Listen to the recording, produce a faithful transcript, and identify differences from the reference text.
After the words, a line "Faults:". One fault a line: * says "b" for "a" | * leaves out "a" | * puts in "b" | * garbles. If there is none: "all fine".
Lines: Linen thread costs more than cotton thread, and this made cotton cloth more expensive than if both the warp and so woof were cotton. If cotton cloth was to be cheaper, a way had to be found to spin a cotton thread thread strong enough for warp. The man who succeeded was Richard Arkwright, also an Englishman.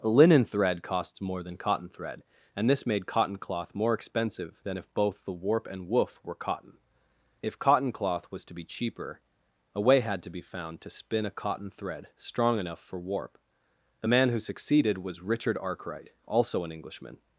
Linen thread costs more than cotton thread, and this made cotton cloth more expensive than if both the warp and woof were cotton. If cotton cloth was to be cheaper, a way had to be found to spin a cotton thread strong enough for warp. The man who succeeded was Richard Arkwright, also an Englishman.
Faults:
* leaves out "so"
* leaves out "thread"